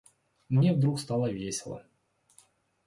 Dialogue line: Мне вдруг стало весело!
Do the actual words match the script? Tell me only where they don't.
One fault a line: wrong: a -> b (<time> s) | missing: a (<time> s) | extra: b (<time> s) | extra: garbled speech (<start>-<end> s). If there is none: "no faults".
no faults